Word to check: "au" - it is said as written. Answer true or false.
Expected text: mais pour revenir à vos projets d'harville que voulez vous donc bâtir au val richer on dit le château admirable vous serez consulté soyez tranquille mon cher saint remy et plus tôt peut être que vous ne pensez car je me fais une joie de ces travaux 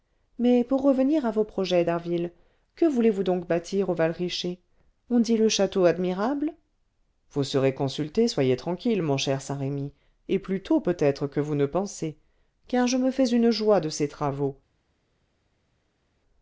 true